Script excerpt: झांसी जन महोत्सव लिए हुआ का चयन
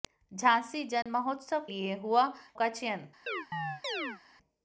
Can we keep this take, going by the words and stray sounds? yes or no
no